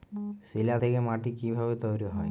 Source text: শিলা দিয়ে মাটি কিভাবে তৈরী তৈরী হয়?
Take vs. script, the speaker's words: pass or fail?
fail